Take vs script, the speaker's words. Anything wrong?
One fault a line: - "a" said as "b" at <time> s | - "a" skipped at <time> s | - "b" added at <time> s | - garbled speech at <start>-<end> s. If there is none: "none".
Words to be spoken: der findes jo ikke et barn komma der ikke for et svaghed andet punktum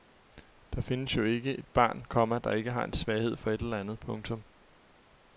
- "har en svaghed" added at 2.7 s
- "svaghed" said as "eller" at 3.6 s